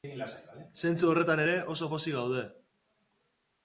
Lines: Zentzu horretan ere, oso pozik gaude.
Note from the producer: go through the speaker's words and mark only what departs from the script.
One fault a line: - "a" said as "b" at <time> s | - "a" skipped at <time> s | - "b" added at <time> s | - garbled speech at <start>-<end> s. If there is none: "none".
none